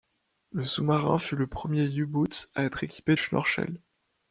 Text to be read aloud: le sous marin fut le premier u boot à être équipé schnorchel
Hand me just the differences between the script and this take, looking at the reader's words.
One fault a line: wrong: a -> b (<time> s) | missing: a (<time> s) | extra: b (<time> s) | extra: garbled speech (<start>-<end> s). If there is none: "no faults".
no faults